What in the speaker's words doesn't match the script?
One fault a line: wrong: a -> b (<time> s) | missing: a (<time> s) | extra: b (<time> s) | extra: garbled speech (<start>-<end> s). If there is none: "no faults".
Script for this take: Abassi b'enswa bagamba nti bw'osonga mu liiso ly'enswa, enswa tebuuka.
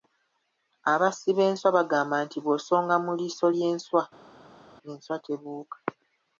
no faults